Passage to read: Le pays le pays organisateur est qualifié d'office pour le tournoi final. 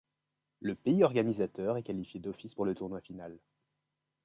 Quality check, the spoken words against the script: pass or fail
fail